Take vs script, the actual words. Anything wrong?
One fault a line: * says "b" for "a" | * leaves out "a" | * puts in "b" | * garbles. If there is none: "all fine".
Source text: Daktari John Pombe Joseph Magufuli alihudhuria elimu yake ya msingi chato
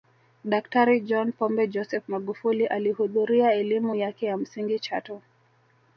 all fine